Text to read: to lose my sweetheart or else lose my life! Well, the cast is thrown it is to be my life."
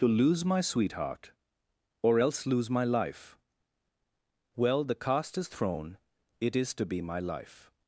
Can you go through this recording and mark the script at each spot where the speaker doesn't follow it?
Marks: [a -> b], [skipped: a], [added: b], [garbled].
to lose my sweetheart or else lose my life! Well, the cast is thrown it is to be my life."